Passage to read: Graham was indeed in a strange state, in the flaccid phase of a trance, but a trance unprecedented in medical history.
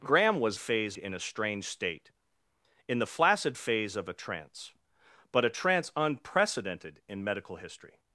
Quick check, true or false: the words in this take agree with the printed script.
false